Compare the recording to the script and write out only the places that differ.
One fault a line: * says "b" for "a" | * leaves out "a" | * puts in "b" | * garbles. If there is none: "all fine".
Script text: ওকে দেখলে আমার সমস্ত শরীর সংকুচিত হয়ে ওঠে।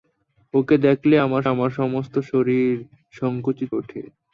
* puts in "আমার"
* leaves out "হয়ে"